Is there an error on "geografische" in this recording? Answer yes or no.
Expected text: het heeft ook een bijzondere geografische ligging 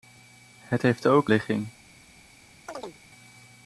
yes